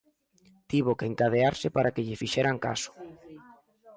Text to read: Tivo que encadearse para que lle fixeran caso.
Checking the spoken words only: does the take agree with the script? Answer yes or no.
yes